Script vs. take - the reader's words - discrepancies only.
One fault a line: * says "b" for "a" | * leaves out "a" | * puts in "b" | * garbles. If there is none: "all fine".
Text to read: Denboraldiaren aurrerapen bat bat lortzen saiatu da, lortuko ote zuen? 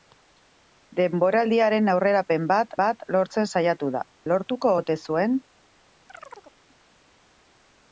all fine